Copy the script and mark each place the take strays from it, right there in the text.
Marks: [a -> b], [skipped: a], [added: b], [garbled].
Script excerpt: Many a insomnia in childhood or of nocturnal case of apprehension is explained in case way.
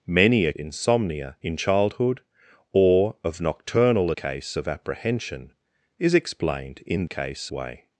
Many a insomnia in childhood or of nocturnal case of apprehension is explained in case way.